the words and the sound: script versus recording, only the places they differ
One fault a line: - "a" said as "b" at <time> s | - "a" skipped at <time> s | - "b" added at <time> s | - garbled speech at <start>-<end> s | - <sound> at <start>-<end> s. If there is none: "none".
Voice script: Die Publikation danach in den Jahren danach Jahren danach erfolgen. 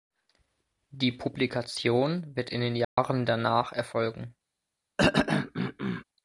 - "danach" said as "wird" at 2.4 s
- dropout at 2.8-3.0 s
- "Jahren danach" skipped at 3.7 s
- throat clearing at 5.0-6.0 s